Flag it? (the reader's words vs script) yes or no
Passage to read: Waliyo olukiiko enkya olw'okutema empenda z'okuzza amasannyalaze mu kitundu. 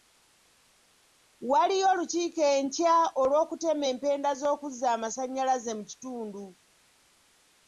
no